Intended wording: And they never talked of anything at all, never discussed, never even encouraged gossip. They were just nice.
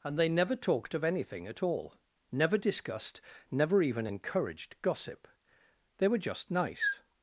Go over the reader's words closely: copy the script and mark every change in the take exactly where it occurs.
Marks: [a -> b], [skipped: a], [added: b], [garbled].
And they never talked of anything at all, never discussed, never even encouraged gossip. They were just nice.